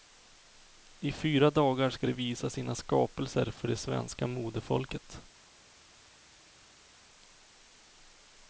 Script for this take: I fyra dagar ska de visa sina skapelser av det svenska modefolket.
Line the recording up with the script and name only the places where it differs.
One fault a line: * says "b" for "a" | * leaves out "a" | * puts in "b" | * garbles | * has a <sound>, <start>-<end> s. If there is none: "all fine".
* says "för" for "av"